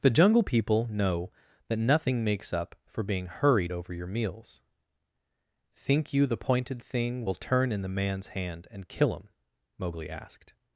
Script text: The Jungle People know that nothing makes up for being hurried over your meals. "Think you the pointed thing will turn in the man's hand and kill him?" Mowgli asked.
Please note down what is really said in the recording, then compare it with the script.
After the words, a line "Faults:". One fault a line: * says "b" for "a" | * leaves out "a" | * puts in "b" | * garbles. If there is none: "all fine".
The Jungle People know that nothing makes up for being hurried over your meals. "Think you the pointed thing will turn in the man's hand and kill him?" Mowgli asked.
Faults:
all fine